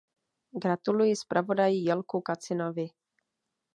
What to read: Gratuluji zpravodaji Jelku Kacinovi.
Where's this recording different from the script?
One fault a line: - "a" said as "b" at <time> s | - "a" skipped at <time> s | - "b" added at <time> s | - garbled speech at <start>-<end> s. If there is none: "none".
none